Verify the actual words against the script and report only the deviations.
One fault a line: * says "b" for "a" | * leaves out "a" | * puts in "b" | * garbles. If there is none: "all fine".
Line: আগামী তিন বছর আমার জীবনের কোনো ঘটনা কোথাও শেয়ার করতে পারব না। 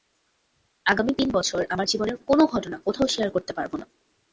all fine